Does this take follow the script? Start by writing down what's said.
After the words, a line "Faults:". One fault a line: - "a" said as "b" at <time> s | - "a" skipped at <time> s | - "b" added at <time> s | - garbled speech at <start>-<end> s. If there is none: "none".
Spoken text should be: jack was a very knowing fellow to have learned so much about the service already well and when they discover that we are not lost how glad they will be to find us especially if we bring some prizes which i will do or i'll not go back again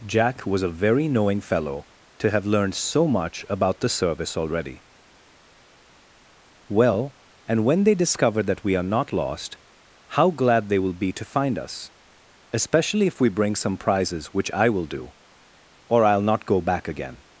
jack was a very knowing fellow to have learned so much about the service already well and when they discover that we are not lost how glad they will be to find us especially if we bring some prizes which i will do or i'll not go back again
Faults:
none